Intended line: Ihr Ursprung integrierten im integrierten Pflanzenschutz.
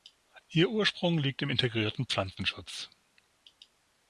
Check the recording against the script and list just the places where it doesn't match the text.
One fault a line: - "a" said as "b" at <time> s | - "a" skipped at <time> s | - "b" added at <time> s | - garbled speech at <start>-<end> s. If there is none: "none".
- "integrierten" said as "liegt" at 1.2 s